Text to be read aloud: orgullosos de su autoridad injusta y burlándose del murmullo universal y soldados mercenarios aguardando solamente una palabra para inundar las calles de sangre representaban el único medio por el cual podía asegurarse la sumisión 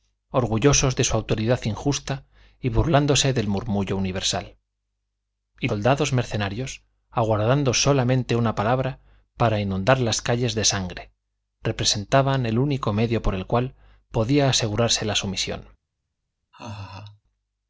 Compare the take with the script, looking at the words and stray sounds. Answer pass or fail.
fail